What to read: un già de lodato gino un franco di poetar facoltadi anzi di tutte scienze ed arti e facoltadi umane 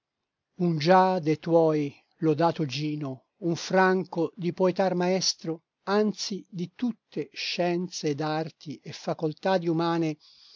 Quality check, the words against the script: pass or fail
fail